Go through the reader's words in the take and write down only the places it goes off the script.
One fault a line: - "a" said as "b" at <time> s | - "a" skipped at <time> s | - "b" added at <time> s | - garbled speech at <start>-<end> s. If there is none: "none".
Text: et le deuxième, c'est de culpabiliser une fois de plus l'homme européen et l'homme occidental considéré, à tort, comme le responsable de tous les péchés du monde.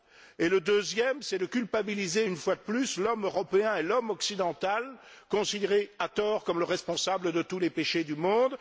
none